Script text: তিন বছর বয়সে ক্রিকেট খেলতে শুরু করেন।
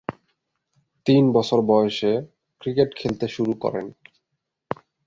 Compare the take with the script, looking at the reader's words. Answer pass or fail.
pass